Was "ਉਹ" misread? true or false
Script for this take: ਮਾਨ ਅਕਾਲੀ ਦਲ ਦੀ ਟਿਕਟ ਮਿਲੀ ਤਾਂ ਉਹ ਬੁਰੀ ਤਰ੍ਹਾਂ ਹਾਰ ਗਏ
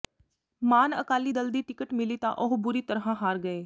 false